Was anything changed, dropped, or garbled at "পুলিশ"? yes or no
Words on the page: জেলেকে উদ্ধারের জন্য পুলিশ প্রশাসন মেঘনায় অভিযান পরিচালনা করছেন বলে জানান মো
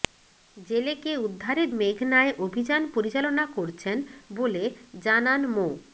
yes